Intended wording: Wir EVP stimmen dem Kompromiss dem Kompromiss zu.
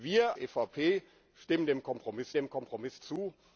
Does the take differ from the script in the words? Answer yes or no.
no